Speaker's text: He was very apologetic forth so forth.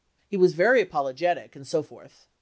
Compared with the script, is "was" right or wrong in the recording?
right